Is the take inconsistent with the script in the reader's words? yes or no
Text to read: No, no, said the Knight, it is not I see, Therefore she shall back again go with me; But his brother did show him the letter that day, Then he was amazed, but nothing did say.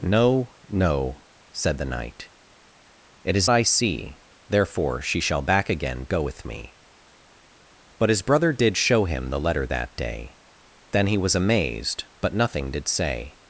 yes